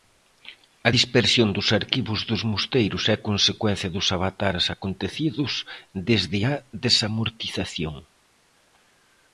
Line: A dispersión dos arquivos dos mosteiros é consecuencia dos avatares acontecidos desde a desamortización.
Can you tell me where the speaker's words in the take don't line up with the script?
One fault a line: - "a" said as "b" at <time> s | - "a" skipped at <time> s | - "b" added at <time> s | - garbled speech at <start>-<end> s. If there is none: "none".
none